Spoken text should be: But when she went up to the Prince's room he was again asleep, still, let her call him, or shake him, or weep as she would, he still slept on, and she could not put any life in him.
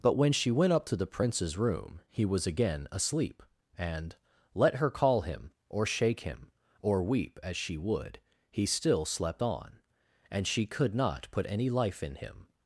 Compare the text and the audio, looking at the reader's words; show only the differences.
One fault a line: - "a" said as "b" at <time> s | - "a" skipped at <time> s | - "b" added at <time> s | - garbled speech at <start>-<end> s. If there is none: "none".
- "still" said as "and" at 3.8 s